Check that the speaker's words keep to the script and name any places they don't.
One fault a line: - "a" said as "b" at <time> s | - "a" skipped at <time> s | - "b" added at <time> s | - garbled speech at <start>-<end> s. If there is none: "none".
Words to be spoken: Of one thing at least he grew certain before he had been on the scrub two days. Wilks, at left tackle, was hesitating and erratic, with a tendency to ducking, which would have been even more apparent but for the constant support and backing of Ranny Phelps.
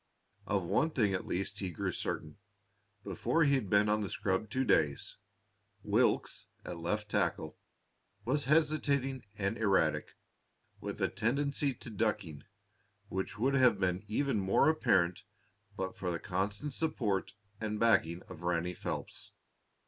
none